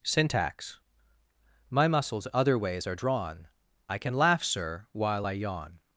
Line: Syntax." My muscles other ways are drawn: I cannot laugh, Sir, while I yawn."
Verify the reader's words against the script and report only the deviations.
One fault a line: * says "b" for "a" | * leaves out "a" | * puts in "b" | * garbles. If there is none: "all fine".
* says "can" for "cannot"